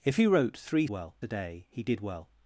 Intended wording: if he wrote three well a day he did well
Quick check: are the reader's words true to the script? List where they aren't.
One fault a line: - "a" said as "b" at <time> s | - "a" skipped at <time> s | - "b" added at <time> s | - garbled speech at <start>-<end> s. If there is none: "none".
none